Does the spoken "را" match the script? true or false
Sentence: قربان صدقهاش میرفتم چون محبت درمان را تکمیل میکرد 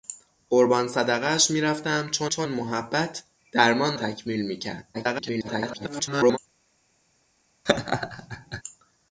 false